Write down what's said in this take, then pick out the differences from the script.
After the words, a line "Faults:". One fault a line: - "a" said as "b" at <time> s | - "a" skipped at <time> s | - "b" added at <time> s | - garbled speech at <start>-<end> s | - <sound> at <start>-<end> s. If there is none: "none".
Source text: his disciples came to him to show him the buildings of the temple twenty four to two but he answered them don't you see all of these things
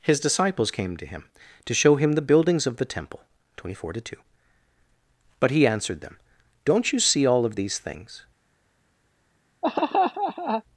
his disciples came to him to show him the buildings of the temple twenty four to two but he answered them don't you see all of these things
Faults:
- laugh at 9.6-10.6 s